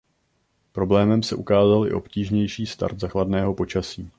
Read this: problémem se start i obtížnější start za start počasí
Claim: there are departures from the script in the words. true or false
true